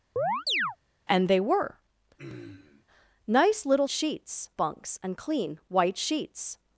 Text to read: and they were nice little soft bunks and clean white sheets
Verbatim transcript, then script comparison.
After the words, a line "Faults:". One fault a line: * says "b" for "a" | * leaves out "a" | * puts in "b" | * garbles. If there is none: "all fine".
and they were nice little sheets bunks and clean white sheets
Faults:
* says "sheets" for "soft"